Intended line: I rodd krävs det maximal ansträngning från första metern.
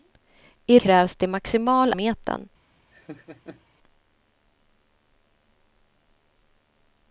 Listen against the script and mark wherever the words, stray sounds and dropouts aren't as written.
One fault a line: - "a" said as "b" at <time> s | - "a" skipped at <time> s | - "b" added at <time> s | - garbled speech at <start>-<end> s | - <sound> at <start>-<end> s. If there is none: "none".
- "rodd" skipped at 0.8 s
- "ansträngning från första" skipped at 1.9 s
- laugh at 2.9-3.6 s